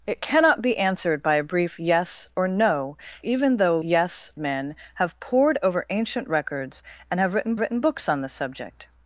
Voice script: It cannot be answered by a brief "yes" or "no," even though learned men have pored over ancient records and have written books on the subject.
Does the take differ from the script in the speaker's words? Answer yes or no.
yes